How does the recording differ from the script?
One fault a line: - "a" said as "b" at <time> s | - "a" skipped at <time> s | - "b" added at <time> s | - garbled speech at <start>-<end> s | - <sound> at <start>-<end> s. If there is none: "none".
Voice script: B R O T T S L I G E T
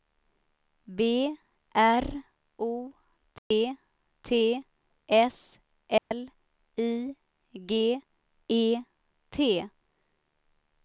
- dropout at 3.4-3.5 s
- dropout at 6.0-6.1 s